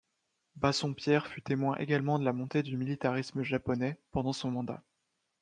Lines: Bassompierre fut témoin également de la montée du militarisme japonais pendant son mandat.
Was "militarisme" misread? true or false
false